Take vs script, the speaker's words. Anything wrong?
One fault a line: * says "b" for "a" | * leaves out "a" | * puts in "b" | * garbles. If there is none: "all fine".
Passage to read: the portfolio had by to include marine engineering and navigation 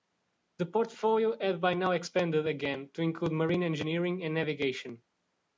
* puts in "now expanded again"